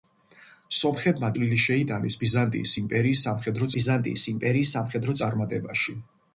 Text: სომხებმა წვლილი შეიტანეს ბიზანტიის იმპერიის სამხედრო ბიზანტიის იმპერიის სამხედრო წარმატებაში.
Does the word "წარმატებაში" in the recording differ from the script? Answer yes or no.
no